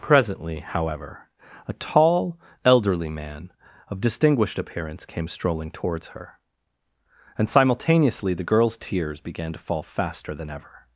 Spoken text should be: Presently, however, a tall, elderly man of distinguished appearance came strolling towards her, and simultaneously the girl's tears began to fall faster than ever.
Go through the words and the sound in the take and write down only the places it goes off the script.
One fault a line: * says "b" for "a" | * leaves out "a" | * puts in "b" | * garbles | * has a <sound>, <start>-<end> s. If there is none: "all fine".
all fine